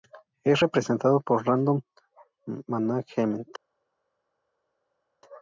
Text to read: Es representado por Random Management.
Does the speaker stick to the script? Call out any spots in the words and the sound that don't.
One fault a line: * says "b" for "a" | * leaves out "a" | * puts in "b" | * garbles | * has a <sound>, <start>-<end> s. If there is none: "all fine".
all fine